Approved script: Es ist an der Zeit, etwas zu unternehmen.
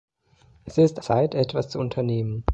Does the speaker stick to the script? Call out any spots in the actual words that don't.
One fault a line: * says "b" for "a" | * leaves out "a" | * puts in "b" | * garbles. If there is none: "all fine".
* leaves out "an der"